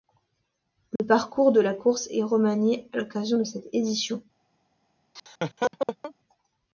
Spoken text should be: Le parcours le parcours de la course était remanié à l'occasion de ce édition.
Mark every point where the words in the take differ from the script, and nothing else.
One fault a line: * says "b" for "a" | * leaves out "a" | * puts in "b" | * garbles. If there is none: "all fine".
* leaves out "le parcours"
* says "est" for "était"
* says "cette" for "ce"